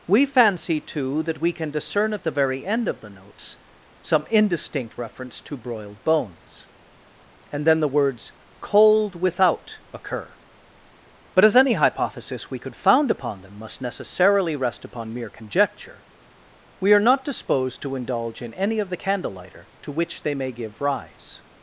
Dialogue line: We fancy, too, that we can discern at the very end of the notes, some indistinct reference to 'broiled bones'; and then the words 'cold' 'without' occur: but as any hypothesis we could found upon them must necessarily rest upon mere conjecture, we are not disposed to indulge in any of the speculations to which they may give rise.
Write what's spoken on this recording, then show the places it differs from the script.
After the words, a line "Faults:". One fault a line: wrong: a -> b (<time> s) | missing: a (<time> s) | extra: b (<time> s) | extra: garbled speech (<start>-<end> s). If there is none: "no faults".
We fancy, too, that we can discern at the very end of the notes, some indistinct reference to 'broiled bones'; and then the words 'cold' 'without' occur: but as any hypothesis we could found upon them must necessarily rest upon mere conjecture, we are not disposed to indulge in any of the candlelighter to which they may give rise.
Faults:
wrong: speculations -> candlelighter (18.9 s)